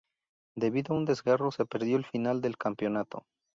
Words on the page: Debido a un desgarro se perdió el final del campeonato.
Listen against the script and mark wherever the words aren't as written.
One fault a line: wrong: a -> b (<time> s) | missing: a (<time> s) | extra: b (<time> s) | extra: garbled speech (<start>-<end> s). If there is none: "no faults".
no faults